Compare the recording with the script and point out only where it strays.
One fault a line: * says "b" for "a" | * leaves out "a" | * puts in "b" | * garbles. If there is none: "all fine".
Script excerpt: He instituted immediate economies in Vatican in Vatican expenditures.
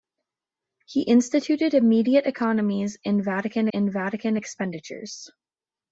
all fine